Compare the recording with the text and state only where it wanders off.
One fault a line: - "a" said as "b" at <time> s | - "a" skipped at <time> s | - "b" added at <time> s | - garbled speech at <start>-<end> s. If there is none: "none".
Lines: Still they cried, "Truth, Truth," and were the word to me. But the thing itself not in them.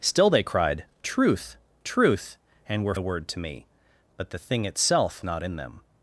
none